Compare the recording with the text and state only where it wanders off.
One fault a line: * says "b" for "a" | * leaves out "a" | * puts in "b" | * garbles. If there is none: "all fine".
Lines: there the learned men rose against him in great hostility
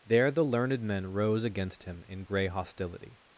* says "grey" for "great"